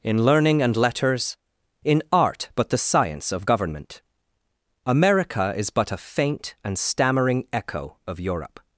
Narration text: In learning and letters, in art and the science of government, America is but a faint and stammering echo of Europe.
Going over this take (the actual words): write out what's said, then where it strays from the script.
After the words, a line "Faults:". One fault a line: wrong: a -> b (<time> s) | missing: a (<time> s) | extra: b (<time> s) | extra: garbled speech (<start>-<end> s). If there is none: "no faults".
In learning and letters, in art but the science of government, America is but a faint and stammering echo of Europe.
Faults:
wrong: and -> but (2.5 s)